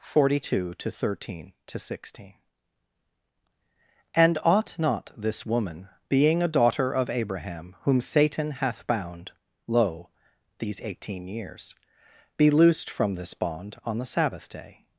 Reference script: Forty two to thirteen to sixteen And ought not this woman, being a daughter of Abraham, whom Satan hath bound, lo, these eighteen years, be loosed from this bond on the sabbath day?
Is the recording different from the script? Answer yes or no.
no